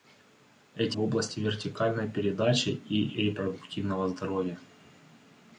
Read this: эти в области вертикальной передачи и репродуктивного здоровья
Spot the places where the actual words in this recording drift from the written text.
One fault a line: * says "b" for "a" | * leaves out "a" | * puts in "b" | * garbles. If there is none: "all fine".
all fine